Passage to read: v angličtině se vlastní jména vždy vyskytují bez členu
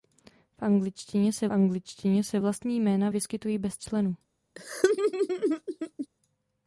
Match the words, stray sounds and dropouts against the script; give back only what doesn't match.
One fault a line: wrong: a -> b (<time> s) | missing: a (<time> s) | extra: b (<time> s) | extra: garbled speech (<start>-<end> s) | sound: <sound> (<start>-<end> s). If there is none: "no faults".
extra: angličtině se (1.5 s)
missing: vždy (3.1 s)
sound: laugh (4.5-6.1 s)